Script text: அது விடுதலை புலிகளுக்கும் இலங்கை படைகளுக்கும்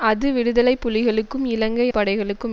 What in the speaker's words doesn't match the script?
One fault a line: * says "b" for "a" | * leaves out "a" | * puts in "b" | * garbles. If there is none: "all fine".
all fine